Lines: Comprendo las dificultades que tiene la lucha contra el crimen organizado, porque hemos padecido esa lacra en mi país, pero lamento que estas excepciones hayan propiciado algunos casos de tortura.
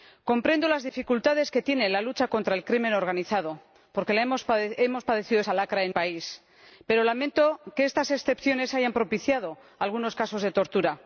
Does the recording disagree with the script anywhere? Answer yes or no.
yes